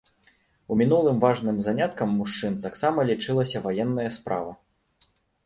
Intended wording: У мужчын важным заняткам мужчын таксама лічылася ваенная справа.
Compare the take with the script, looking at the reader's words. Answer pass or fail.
fail